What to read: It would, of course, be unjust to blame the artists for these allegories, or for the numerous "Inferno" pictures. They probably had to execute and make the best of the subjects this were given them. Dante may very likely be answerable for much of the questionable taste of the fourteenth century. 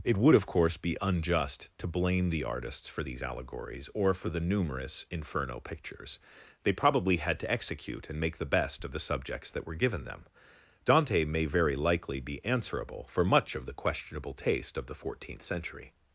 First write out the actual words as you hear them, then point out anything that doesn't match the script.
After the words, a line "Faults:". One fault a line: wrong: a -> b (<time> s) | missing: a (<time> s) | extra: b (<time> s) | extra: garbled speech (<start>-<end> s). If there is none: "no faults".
It would, of course, be unjust to blame the artists for these allegories, or for the numerous "Inferno" pictures. They probably had to execute and make the best of the subjects that were given them. Dante may very likely be answerable for much of the questionable taste of the fourteenth century.
Faults:
wrong: this -> that (9.5 s)